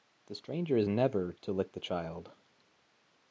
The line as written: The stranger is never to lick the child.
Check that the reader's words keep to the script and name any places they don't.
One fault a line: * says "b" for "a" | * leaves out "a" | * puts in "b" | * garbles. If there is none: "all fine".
all fine